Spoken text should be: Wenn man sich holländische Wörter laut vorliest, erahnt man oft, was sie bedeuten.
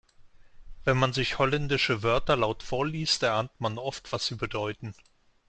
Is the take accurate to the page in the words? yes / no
yes